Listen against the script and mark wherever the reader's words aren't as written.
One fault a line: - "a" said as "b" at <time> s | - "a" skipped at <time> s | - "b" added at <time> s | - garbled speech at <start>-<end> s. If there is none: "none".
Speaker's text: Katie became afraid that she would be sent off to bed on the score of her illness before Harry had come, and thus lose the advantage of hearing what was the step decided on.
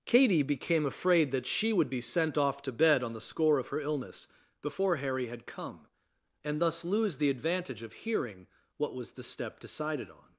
none